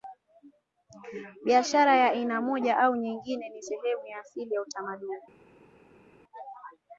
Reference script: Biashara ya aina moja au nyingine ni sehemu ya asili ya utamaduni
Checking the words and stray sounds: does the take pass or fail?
pass